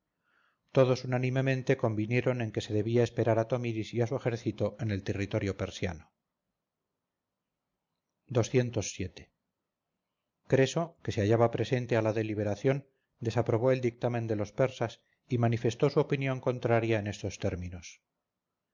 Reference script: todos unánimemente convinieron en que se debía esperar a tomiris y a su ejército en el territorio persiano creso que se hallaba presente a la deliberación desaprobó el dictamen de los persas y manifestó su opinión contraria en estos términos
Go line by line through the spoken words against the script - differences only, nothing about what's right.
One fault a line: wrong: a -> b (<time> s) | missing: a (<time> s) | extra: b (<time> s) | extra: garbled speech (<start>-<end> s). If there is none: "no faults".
no faults